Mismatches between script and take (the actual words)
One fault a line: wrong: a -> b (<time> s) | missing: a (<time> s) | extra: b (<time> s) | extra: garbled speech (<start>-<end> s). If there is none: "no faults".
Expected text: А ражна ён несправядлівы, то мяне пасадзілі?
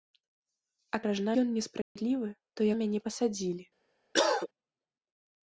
no faults